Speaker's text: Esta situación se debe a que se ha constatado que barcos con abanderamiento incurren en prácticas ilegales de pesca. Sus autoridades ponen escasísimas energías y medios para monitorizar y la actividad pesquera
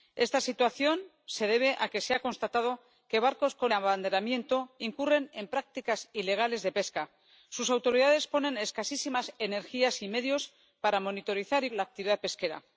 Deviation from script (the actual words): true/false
false